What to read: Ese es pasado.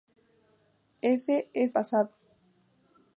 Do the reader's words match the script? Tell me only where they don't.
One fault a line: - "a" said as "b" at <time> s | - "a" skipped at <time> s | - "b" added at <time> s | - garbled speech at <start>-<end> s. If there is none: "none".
none